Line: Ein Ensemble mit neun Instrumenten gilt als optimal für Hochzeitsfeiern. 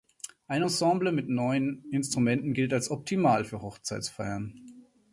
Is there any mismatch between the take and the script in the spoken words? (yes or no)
no